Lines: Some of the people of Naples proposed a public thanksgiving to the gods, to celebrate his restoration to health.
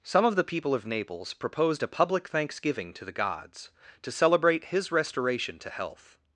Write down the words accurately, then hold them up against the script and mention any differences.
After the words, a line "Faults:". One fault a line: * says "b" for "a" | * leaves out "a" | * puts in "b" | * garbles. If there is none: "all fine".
Some of the people of Naples proposed a public thanksgiving to the gods, to celebrate his restoration to health.
Faults:
all fine